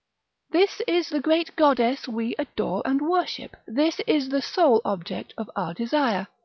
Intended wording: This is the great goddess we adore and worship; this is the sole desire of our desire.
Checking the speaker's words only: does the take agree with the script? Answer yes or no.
no